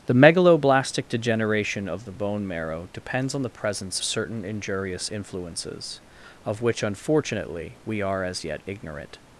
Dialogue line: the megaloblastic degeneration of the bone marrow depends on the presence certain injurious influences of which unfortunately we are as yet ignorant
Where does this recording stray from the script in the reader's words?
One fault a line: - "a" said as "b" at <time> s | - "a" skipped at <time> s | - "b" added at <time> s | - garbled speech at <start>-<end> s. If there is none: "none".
none